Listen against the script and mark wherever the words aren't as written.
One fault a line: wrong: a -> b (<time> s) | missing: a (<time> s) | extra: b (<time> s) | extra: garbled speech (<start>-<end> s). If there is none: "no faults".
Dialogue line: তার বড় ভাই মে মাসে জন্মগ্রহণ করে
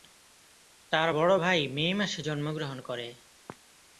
no faults